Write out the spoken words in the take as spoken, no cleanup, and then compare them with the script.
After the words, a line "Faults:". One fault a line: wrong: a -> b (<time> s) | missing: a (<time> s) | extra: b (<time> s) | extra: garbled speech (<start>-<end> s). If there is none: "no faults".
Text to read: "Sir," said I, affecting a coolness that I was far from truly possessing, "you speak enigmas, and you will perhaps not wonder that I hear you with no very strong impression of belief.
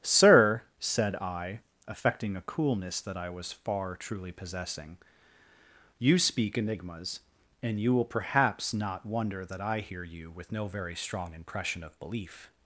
"Sir," said I, affecting a coolness that I was far truly possessing, "you speak enigmas, and you will perhaps not wonder that I hear you with no very strong impression of belief.
Faults:
missing: from (3.9 s)